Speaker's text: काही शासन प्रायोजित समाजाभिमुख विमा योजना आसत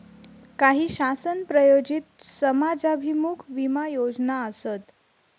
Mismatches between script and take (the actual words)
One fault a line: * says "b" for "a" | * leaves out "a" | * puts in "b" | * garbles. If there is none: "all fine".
all fine